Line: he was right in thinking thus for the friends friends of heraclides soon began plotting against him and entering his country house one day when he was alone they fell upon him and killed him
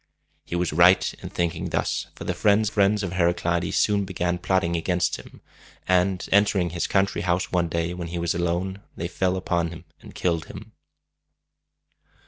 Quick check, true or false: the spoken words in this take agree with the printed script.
true